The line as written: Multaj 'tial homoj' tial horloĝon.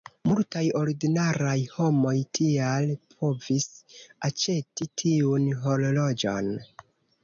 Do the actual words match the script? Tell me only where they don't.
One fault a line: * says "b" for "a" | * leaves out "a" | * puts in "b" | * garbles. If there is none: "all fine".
* says "ordinaraj" for "tial"
* puts in "povis aĉeti tiun"